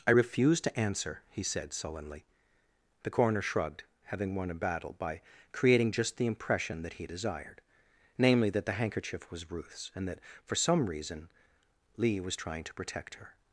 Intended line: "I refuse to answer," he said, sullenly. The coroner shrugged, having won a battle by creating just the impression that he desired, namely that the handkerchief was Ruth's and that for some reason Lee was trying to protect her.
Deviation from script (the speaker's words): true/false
false